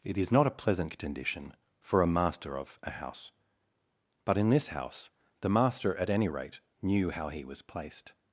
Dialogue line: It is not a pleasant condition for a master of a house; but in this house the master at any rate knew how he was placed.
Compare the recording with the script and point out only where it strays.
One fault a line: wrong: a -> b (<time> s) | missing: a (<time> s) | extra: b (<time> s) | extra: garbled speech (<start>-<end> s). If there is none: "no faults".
no faults